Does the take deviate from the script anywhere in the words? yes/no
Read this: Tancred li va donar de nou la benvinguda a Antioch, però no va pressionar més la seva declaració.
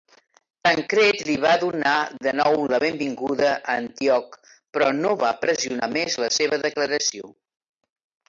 no